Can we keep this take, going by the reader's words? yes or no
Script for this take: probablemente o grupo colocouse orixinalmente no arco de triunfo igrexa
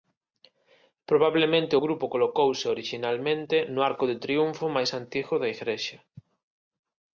no